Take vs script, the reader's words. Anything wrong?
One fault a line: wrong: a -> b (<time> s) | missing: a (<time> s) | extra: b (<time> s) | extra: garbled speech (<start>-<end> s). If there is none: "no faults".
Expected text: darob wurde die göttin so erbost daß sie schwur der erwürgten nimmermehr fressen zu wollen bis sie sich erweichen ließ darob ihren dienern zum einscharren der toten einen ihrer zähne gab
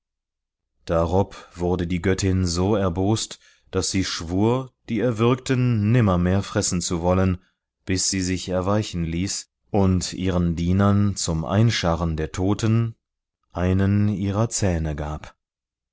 wrong: der -> die (4.9 s)
wrong: darob -> und (9.7 s)